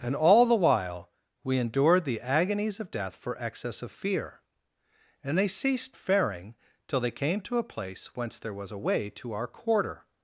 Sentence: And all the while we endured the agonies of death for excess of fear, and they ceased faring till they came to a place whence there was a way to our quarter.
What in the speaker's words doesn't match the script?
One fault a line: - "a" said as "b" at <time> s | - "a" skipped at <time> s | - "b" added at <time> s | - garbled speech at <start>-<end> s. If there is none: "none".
none